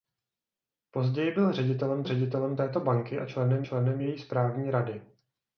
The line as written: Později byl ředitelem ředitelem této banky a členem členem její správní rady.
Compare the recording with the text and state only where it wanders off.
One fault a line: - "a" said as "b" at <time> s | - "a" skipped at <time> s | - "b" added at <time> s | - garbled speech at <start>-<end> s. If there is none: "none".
none